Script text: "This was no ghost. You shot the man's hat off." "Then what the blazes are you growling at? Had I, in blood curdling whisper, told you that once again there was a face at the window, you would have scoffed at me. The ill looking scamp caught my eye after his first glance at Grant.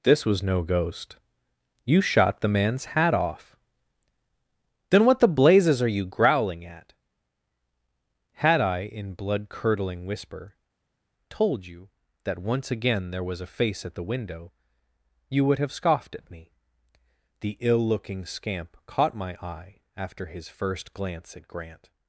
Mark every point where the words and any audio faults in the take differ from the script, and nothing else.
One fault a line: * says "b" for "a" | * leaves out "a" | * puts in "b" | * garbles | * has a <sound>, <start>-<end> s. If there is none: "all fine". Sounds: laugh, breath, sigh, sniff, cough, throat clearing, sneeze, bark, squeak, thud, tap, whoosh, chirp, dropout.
all fine